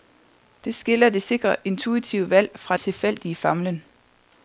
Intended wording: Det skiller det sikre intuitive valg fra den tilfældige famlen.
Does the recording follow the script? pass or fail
fail